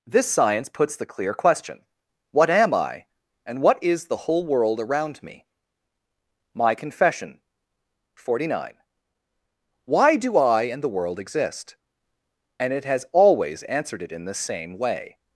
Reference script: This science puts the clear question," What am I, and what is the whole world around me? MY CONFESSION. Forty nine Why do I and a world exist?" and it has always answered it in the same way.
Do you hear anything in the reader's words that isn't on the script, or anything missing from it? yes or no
yes